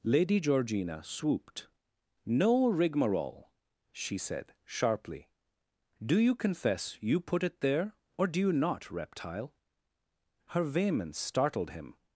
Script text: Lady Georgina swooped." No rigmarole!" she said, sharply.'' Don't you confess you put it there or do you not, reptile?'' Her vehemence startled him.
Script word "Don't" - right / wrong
wrong